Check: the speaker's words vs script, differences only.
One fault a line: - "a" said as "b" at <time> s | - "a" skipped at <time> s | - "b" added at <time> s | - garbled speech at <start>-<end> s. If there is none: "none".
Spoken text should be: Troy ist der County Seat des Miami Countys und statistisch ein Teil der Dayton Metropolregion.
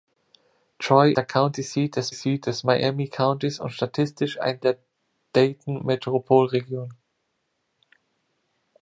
- "ist" skipped at 1.1 s
- "Seat des" added at 2.1 s
- "Teil" skipped at 4.6 s